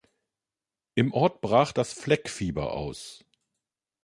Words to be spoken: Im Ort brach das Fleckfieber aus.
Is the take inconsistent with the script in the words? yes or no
no